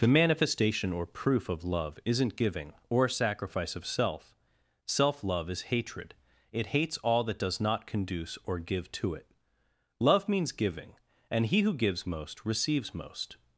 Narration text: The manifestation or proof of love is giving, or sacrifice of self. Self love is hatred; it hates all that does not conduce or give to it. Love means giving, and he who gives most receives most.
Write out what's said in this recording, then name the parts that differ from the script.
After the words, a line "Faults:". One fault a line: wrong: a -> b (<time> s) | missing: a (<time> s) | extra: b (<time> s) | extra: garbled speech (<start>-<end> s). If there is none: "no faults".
The manifestation or proof of love isn't giving, or sacrifice of self. Self love is hatred; it hates all that does not conduce or give to it. Love means giving, and he who gives most receives most.
Faults:
wrong: is -> isn't (2.0 s)